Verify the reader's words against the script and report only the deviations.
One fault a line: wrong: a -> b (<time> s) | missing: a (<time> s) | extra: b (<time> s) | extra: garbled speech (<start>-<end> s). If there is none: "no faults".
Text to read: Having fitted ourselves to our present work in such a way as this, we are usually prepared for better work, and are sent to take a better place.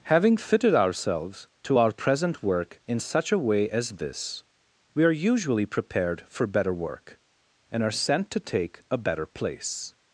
no faults